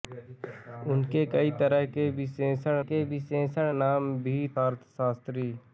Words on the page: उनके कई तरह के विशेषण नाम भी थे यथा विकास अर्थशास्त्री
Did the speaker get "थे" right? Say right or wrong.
wrong